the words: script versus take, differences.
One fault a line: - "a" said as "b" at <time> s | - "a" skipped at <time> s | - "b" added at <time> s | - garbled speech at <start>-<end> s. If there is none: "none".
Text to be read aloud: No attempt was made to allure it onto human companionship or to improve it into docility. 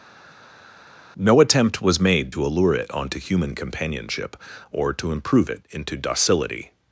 none